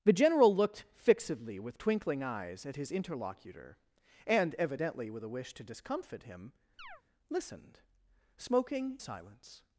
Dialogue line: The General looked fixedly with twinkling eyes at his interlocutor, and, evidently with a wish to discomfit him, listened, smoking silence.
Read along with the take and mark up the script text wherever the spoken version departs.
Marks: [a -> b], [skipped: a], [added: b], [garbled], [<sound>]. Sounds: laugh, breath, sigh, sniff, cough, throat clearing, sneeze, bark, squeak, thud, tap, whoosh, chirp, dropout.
The General looked fixedly with twinkling eyes at his interlocutor, and, evidently with a wish to discomfit him, [chirp] listened, smoking silence.